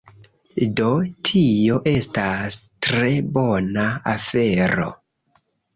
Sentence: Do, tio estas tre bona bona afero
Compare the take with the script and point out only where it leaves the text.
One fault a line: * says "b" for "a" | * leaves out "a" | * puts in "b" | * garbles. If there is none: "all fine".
* leaves out "bona"